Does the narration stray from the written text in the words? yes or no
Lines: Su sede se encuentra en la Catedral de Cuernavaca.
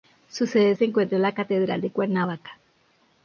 no